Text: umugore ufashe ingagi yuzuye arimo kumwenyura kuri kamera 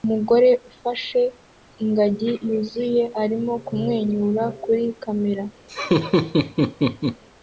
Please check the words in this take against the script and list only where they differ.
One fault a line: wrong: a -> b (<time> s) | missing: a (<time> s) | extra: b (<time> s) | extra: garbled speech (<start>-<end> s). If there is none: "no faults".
no faults